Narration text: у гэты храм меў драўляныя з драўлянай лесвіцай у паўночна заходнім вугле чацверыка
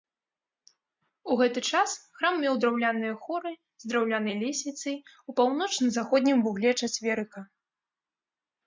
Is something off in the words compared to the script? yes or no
yes